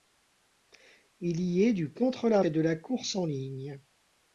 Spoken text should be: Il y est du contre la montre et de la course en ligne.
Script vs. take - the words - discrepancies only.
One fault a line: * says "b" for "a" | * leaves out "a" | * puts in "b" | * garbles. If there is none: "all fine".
* leaves out "montre"